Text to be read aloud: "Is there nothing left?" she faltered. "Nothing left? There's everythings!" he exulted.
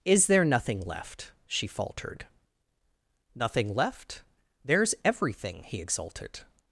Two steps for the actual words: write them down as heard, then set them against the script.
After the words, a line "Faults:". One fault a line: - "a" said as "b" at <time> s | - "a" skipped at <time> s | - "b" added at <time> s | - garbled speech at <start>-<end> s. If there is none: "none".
"Is there nothing left?" she faltered. "Nothing left? There's everything!" he exulted.
Faults:
- "everythings" said as "everything" at 5.0 s